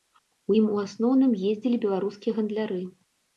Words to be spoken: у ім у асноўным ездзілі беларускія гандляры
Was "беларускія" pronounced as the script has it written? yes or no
yes